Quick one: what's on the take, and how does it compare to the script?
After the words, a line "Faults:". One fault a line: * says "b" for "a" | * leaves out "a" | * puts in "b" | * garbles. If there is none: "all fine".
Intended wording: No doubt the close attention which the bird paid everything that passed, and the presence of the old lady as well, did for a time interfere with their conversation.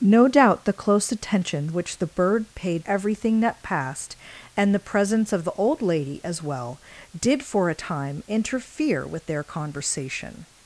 No doubt the close attention which the bird paid everything that passed, and the presence of the old lady as well, did for a time interfere with their conversation.
Faults:
all fine